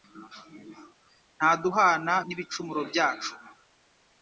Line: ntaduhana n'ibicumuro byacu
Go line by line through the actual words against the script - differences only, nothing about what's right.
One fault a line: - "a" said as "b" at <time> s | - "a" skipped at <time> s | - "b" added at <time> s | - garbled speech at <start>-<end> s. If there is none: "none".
none